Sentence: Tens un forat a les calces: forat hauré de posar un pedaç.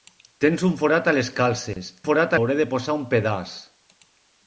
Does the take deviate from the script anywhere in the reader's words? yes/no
no